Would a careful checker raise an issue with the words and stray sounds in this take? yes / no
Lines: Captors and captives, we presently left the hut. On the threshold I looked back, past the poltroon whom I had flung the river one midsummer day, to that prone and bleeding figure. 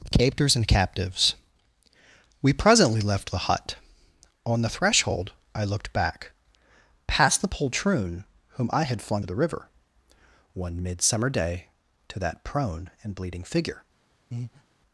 yes